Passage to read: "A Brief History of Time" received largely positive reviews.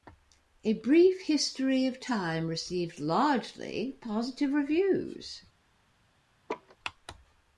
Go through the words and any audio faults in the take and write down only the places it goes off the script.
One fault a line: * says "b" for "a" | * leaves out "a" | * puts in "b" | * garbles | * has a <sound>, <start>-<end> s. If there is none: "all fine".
* has a laugh, 6.5-6.8 s